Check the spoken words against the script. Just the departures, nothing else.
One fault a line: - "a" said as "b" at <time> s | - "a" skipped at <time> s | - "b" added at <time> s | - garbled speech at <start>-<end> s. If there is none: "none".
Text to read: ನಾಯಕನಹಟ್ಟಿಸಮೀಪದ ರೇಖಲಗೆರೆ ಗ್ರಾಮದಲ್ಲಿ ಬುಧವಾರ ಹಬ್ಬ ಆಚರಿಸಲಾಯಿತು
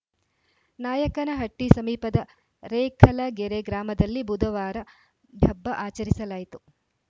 none